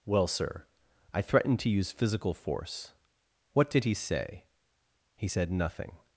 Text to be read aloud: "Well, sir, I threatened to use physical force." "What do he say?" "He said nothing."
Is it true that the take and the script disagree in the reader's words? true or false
true